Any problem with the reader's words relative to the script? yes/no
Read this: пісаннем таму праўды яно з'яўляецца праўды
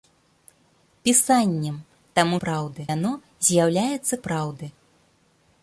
no